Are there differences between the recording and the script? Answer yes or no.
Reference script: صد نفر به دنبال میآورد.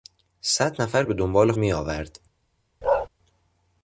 no